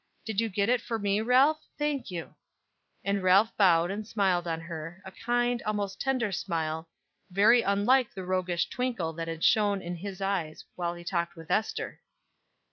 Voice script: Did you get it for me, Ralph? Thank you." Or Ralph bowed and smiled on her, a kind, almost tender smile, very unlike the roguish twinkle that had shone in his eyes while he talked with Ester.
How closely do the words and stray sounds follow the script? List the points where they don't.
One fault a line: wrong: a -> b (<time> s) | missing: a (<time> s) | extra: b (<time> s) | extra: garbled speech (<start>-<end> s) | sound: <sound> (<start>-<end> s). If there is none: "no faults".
wrong: Or -> And (3.0 s)